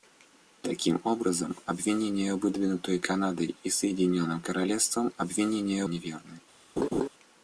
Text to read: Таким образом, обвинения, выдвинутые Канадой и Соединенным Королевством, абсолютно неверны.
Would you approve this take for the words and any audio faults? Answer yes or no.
no